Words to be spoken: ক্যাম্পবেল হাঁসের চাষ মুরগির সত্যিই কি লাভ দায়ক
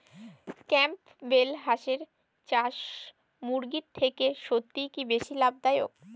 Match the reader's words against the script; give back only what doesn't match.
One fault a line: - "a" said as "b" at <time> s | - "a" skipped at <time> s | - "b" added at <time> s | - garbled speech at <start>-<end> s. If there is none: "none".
- "থেকে" added at 4.0 s
- "বেশি" added at 5.1 s